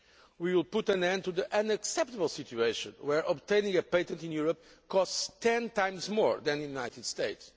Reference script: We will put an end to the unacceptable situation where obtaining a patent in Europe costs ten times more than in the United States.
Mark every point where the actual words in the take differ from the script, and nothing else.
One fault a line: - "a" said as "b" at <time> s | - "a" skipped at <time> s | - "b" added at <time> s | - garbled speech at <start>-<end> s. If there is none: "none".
none